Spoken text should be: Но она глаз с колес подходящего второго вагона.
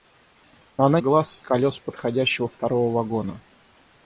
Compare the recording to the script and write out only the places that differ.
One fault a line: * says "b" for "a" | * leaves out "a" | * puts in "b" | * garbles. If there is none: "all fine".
all fine